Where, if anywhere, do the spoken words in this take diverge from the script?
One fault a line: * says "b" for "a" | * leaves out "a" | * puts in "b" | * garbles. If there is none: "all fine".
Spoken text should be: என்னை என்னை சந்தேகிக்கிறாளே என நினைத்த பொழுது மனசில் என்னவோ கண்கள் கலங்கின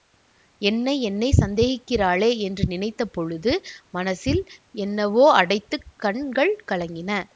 * says "என்று" for "என"
* puts in "அடைத்து"